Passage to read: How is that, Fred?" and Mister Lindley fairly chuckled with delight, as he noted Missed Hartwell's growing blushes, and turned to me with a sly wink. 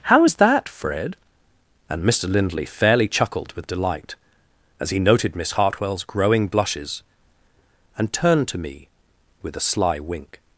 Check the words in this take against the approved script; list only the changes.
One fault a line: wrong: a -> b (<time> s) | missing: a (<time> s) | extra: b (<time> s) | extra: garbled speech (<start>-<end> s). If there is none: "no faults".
wrong: Missed -> Miss (5.3 s)